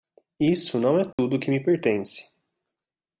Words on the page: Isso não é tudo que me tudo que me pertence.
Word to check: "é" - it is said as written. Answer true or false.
true